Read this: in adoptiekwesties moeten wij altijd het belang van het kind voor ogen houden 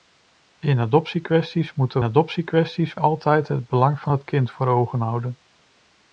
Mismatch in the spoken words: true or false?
true